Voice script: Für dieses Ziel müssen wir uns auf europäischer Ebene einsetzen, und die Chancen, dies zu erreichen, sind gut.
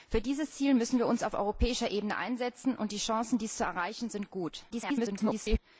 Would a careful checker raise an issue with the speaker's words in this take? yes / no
yes